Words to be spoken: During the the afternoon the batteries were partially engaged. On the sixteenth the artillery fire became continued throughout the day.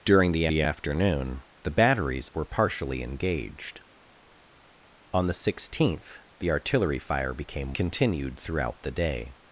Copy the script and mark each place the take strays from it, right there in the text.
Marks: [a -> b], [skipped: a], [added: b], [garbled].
During the the afternoon the batteries were partially engaged. On the sixteenth the artillery fire became continued throughout the day.